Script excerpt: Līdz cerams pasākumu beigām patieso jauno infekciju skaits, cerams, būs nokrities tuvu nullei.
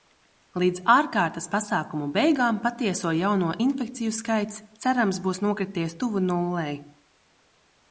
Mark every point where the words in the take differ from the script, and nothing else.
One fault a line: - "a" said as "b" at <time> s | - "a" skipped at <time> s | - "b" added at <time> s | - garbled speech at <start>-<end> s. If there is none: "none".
- "cerams" said as "ārkārtas" at 0.9 s